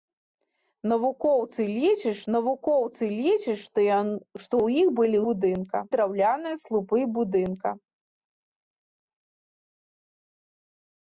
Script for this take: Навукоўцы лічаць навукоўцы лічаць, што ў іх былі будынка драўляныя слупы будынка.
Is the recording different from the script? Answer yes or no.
no